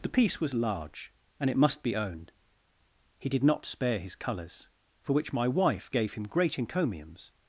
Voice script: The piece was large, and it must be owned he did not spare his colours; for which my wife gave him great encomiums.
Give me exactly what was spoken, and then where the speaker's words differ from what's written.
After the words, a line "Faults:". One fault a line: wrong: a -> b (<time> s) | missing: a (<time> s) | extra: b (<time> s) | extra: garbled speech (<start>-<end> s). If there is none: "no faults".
The piece was large, and it must be owned he did not spare his colours; for which my wife gave him great encomiums.
Faults:
no faults